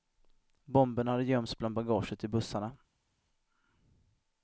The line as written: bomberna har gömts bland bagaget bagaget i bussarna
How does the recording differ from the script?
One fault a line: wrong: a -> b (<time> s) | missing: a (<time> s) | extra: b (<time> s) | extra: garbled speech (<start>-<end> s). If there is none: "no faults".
wrong: har -> hade (1.1 s)
missing: bagaget (2.2 s)